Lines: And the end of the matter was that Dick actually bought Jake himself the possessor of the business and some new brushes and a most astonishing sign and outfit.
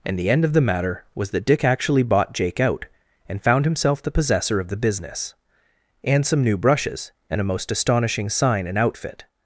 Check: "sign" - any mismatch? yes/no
no